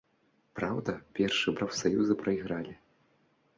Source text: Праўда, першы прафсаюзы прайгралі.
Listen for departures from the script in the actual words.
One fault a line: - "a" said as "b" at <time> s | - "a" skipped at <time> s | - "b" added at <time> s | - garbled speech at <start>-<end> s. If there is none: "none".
none